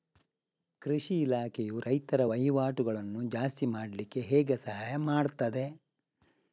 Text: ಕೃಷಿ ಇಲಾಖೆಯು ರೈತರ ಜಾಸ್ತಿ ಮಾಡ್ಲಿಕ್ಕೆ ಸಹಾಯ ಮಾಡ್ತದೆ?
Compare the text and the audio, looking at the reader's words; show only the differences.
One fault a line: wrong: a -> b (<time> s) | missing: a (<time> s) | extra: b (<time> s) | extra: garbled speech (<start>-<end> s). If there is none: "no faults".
extra: ವಹಿವಾಟುಗಳನ್ನು (2.2 s)
extra: ಹೇಗೆ (4.2 s)